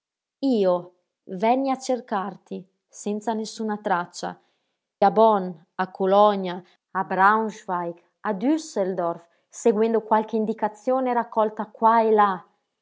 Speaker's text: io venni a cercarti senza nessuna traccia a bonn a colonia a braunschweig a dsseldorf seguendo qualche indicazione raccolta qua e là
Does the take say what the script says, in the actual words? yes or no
yes